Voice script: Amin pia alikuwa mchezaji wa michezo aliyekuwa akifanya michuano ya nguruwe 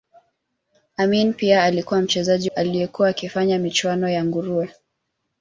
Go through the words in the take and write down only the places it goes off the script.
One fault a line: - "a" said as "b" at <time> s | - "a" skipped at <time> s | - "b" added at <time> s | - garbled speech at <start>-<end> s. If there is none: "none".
- "wa michezo" skipped at 2.5 s